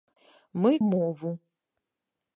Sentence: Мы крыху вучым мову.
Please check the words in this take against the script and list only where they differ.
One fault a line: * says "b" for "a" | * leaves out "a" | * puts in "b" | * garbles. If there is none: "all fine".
* leaves out "крыху вучым"